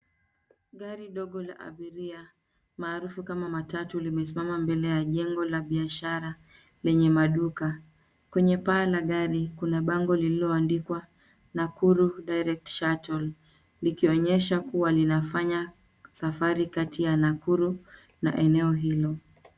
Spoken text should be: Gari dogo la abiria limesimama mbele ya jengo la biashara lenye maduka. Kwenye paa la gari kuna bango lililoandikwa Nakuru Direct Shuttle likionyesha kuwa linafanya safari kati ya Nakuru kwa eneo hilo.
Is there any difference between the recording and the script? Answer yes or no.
yes